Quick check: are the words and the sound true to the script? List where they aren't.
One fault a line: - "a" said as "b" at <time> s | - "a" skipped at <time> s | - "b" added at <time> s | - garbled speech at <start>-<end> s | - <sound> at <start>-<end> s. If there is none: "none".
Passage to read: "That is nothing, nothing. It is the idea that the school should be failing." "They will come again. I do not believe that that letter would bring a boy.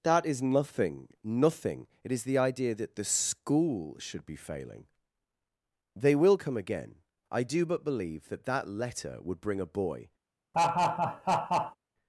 - "not" said as "but" at 7.7 s
- laugh at 10.5-11.8 s